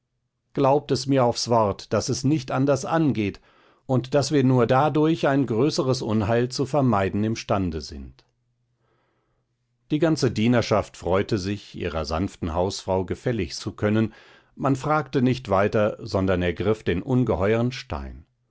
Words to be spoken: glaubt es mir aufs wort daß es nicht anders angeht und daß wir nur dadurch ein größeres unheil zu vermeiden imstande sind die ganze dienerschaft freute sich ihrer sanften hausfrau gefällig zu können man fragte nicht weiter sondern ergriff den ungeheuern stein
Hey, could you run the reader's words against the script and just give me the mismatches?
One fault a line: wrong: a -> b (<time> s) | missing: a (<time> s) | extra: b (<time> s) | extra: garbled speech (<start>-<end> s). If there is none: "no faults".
no faults